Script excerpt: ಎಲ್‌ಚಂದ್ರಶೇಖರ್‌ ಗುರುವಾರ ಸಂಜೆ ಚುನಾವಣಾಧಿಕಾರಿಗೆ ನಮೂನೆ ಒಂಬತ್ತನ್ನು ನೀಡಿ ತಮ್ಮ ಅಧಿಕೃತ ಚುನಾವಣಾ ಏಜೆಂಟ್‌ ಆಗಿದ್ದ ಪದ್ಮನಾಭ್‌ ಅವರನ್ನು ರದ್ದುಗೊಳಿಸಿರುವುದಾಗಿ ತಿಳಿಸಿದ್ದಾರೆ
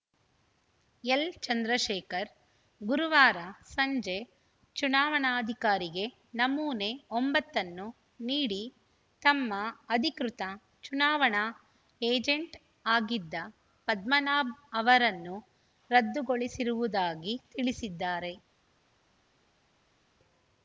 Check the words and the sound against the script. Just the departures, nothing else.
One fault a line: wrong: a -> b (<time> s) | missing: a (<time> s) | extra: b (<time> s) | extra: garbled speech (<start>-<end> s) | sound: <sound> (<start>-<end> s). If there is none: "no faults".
no faults